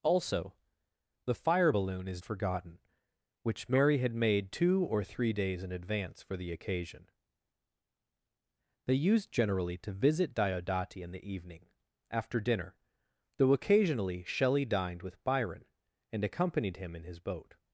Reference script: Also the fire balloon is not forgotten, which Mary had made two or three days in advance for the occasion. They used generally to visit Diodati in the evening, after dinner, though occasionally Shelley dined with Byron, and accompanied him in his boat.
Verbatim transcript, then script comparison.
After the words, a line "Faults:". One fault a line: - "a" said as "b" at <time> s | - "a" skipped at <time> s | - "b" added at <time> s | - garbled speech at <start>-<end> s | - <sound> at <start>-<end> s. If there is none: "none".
Also the fire balloon is forgotten, which Mary had made two or three days in advance for the occasion. They used generally to visit Diodati in the evening, after dinner, though occasionally Shelley dined with Byron, and accompanied him in his boat.
Faults:
- "not" skipped at 2.2 s